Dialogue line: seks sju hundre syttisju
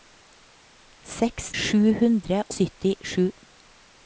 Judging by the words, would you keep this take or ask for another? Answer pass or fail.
pass